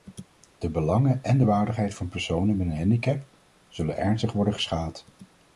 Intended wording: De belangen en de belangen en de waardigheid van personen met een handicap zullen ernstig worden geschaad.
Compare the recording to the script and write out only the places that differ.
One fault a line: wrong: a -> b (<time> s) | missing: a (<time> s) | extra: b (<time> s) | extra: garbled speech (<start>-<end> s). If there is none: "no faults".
missing: belangen en de (1.4 s)